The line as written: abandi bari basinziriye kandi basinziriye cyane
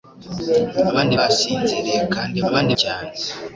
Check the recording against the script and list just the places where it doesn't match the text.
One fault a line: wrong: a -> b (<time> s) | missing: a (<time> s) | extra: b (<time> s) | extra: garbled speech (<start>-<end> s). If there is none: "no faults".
missing: bari (1.1 s)
wrong: basinziriye -> abandi (2.5 s)